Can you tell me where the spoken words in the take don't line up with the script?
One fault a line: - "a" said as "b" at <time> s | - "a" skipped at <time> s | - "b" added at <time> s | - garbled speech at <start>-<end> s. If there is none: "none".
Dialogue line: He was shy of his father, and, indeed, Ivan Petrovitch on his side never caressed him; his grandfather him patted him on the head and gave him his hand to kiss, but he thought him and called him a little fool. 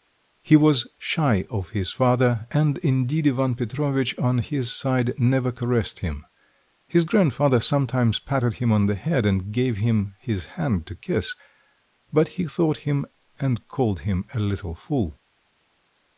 - "him" said as "sometimes" at 7.6 s